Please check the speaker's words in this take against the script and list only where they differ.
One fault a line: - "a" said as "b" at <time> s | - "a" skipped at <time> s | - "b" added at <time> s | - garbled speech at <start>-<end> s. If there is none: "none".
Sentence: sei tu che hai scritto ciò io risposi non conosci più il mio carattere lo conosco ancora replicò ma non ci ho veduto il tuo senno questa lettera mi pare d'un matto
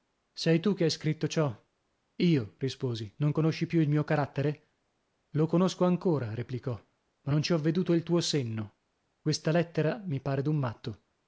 none